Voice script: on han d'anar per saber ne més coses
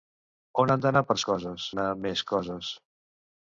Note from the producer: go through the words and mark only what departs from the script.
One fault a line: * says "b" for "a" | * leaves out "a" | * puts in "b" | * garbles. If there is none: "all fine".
* says "coses" for "saber"